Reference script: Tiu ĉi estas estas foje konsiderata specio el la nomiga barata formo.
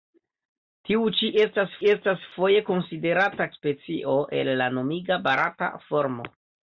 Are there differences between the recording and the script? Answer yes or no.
no